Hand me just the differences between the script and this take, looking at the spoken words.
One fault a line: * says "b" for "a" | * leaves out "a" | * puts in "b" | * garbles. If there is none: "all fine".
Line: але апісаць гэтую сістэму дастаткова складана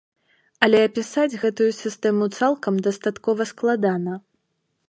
* puts in "цалкам"